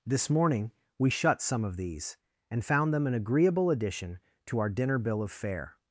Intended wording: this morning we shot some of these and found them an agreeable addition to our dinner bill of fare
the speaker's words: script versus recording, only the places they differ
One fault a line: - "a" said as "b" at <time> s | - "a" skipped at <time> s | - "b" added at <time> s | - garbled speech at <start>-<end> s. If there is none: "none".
- "shot" said as "shut" at 1.1 s